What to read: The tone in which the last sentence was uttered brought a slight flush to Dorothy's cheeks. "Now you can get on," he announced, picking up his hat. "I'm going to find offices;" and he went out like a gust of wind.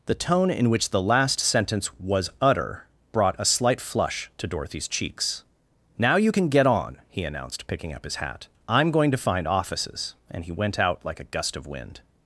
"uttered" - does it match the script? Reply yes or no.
no